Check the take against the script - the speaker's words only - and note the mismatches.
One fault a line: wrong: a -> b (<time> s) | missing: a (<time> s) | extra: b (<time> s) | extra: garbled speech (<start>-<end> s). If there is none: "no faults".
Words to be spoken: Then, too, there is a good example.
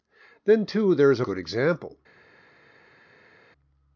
no faults